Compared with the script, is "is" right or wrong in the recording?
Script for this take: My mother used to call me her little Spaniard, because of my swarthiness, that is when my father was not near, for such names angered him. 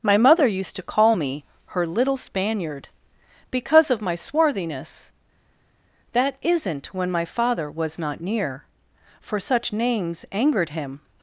wrong